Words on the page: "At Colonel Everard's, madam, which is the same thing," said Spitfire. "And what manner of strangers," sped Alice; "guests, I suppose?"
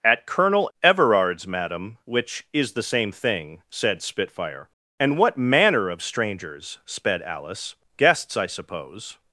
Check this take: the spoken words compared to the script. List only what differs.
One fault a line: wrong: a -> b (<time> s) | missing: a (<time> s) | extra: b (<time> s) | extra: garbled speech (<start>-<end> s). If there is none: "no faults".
no faults